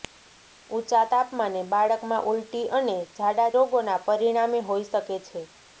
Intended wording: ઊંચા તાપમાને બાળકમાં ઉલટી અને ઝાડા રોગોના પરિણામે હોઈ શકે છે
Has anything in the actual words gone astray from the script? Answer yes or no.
no